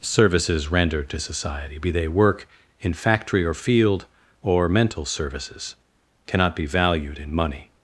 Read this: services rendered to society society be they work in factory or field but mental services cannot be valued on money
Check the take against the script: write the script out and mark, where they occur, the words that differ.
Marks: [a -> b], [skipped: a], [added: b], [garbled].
services rendered to society [skipped: society] be they work in factory or field [but -> or] mental services cannot be valued [on -> in] money